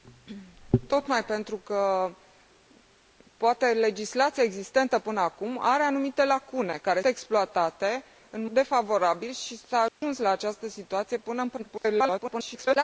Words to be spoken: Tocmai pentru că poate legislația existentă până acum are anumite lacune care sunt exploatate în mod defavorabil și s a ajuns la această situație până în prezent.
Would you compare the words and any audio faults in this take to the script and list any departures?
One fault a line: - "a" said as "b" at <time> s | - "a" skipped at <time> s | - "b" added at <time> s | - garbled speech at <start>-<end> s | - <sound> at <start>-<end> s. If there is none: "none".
- "sunt" skipped at 7.0 s
- "mod" skipped at 8.4 s
- dropout at 9.9-10.0 s
- garbled speech at 11.6-12.8 s